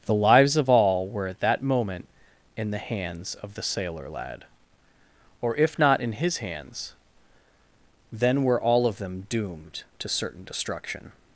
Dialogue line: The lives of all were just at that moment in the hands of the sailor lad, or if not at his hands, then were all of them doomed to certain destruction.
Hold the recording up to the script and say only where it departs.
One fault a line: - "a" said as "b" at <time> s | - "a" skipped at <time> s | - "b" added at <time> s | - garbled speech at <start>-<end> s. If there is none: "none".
- "just" skipped at 1.3 s
- "at" said as "in" at 6.0 s